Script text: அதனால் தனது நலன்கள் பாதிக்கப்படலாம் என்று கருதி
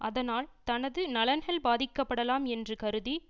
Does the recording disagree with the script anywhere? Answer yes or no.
no